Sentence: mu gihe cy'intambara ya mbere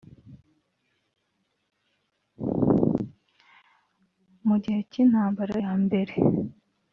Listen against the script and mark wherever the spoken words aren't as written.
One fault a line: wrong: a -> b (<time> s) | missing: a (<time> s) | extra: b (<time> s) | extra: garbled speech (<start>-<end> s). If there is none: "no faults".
no faults